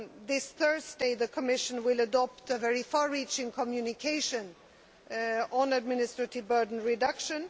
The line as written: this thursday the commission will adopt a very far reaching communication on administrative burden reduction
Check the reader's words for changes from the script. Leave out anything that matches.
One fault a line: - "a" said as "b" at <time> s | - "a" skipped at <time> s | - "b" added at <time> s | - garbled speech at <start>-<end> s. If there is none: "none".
none